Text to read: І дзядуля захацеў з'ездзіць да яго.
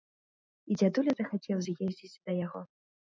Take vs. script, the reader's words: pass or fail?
pass